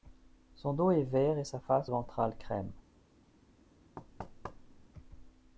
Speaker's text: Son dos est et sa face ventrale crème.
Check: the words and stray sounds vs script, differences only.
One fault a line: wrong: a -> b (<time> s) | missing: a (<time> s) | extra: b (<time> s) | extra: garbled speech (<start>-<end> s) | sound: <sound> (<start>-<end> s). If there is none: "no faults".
extra: vert (1.0 s)
sound: thud (4.0-4.9 s)